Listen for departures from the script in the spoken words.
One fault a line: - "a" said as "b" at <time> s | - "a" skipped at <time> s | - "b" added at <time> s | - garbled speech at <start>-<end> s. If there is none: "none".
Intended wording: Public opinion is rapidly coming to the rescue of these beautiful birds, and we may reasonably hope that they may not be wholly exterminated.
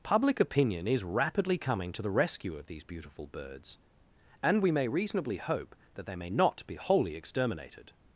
none